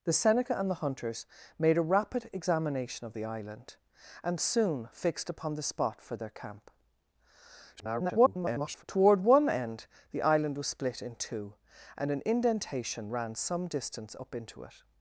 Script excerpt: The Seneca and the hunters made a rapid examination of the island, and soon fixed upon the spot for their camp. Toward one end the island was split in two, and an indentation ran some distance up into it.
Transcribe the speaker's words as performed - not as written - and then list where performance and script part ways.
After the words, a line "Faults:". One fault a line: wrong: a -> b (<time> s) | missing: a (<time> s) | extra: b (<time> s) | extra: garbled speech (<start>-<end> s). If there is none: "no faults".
The Seneca and the hunters made a rapid examination of the island, and soon fixed upon the spot for their camp. [garbled] Toward one end the island was split in two, and an indentation ran some distance up into it.
Faults:
extra: garbled speech (7.8-8.8 s)